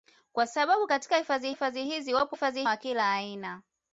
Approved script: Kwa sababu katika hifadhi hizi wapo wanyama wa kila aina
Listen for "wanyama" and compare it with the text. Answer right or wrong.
wrong